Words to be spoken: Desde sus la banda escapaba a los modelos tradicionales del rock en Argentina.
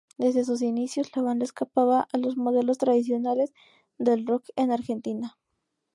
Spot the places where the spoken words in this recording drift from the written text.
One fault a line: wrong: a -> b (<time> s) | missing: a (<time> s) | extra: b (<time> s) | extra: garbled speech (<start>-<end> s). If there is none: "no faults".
extra: inicios (0.6 s)